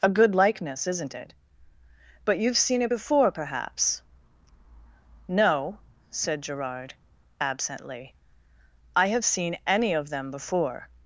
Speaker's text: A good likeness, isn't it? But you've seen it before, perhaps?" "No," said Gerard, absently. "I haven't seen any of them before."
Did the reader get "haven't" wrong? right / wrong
wrong